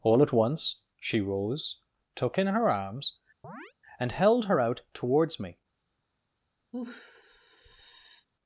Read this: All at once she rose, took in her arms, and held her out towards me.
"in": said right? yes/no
yes